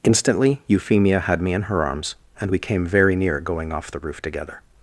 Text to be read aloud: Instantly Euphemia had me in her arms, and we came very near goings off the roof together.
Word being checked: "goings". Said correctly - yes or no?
no